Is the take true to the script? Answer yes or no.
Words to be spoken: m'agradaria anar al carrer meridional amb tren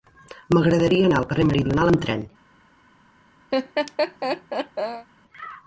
yes